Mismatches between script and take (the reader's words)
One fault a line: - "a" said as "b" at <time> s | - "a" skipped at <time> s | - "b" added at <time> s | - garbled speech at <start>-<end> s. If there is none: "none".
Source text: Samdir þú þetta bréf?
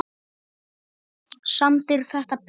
- "þú" skipped at 2.0 s